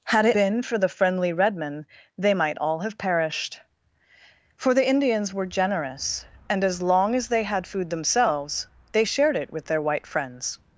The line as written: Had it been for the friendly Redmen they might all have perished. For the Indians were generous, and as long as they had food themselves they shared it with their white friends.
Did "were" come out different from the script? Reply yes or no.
no